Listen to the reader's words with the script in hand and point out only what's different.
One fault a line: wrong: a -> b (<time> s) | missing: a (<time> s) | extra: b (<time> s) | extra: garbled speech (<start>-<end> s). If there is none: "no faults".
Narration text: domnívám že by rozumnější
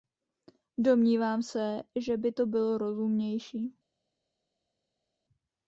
extra: se (1.4 s)
extra: to bylo (2.3 s)